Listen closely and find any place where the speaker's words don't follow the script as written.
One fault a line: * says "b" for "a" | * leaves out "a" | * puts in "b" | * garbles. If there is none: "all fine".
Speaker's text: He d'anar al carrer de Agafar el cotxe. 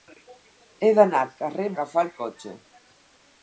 all fine